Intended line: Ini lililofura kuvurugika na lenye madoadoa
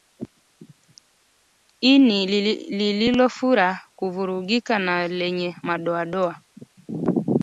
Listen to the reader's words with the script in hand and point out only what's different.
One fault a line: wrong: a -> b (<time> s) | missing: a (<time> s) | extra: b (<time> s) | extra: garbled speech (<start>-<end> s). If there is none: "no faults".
no faults